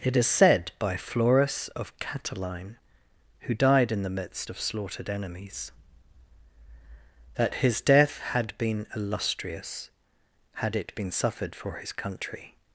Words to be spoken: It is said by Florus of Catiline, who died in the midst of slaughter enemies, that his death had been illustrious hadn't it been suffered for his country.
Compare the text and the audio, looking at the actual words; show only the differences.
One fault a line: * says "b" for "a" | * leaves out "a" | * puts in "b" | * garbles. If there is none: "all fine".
* says "slaughtered" for "slaughter"
* says "had" for "hadn't"